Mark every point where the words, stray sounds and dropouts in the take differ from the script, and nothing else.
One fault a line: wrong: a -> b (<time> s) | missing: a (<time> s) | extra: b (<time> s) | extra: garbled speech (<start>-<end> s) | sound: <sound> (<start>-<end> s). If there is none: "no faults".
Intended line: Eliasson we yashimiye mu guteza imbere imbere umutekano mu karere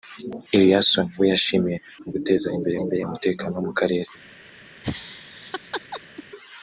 sound: laugh (4.8-6.2 s)